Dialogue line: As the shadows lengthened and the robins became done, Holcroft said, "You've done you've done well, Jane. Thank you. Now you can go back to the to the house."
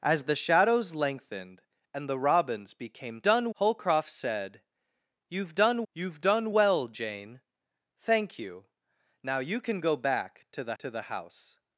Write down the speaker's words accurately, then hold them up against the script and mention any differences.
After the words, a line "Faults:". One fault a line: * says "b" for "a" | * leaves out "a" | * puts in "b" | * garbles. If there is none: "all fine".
As the shadows lengthened and the robins became done, Holcroft said, "You've done you've done well, Jane. Thank you. Now you can go back to the to the house."
Faults:
all fine